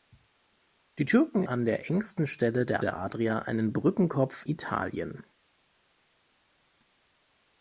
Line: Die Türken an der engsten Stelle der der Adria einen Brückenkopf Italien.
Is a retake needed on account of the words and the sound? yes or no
no